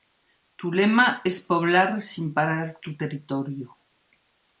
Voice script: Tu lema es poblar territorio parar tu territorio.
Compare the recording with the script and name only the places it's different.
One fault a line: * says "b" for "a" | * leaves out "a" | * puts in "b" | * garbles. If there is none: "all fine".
* says "sin" for "territorio"